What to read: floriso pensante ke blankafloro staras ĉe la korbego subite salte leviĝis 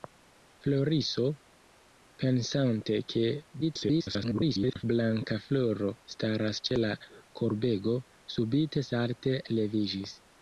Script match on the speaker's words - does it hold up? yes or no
no